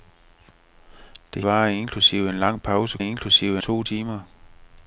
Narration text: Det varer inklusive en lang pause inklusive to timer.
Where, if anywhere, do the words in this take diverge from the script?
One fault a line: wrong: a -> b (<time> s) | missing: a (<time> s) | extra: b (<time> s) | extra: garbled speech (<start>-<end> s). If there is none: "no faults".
no faults